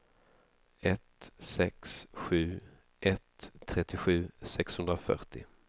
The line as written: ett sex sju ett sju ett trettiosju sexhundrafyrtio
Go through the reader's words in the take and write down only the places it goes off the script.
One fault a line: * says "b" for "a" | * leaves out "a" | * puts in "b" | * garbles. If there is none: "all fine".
* leaves out "sju ett"